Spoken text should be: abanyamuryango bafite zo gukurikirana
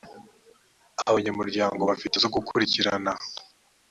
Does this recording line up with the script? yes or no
yes